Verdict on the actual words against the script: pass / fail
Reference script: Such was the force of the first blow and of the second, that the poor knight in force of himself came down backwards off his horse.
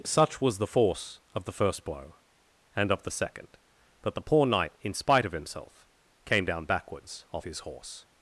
fail